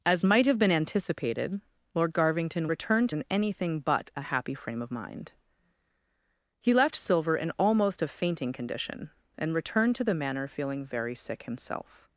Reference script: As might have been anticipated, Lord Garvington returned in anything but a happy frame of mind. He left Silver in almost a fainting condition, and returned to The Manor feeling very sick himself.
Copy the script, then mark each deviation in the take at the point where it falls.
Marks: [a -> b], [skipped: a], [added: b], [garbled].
As might have been anticipated, Lord Garvington returned in anything but a happy frame of mind. He left Silver in almost a fainting condition, and returned to The Manor feeling very sick himself.